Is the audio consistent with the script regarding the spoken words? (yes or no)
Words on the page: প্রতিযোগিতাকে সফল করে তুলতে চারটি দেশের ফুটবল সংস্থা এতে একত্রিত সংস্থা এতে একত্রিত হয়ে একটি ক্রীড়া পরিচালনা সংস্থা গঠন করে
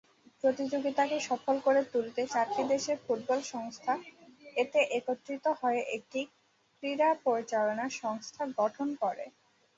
no